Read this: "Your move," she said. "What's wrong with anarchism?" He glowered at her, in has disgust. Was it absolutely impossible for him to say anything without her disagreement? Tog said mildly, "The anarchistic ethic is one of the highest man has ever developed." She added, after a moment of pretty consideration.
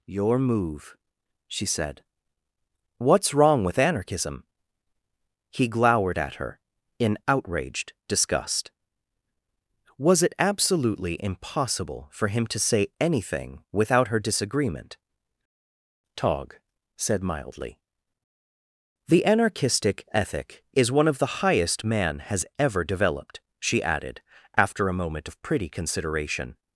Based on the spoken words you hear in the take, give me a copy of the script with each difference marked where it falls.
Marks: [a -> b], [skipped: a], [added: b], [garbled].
"Your move," she said. "What's wrong with anarchism?" He glowered at her, in [has -> outraged] disgust. Was it absolutely impossible for him to say anything without her disagreement? Tog said mildly, "The anarchistic ethic is one of the highest man has ever developed." She added, after a moment of pretty consideration.